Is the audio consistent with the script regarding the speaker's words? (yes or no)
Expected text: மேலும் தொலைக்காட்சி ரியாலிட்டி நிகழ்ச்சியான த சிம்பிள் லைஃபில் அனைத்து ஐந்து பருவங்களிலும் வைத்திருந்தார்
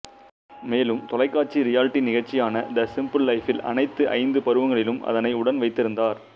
no